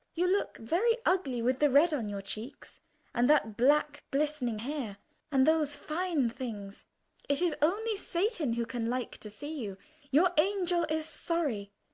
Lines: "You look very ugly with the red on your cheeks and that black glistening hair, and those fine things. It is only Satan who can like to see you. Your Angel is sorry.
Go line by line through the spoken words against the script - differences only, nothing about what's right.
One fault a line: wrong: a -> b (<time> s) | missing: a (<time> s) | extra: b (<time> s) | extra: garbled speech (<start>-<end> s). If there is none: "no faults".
no faults